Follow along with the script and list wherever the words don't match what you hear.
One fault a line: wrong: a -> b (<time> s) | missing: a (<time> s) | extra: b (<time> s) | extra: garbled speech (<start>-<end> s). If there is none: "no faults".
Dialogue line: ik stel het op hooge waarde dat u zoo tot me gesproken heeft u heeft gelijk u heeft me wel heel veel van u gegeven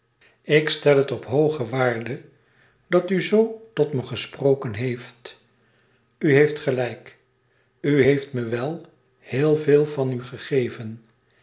no faults